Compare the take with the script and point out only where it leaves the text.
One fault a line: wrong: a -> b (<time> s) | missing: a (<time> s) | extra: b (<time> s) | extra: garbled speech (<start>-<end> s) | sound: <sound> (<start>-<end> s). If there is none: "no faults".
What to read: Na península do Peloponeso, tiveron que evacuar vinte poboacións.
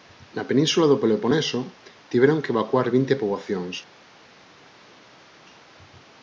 no faults